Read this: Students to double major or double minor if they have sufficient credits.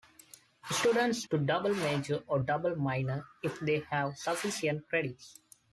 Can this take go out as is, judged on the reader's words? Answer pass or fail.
pass